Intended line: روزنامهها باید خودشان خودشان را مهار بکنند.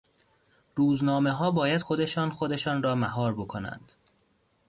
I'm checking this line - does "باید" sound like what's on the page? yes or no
yes